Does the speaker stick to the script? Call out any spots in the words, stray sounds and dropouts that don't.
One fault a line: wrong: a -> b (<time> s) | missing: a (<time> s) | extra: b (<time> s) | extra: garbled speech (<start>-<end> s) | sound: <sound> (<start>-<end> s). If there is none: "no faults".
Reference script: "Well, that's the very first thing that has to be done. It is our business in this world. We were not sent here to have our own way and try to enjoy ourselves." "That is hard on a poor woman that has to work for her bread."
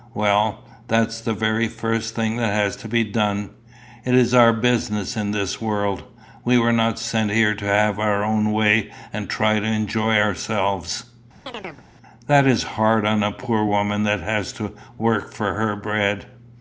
sound: chirp (11.5-11.8 s)